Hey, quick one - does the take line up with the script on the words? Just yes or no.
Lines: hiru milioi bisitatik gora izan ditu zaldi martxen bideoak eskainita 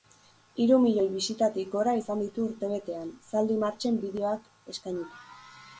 no